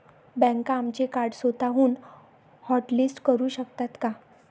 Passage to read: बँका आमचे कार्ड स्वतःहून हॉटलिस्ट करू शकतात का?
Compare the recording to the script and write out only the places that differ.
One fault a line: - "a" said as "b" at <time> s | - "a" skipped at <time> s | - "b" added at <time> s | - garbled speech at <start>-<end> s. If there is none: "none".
none